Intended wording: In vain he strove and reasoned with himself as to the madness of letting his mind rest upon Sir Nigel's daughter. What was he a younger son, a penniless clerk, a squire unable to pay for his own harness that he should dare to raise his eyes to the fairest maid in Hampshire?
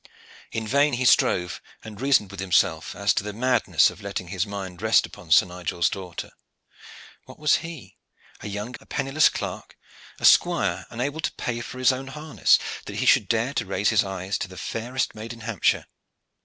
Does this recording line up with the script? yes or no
no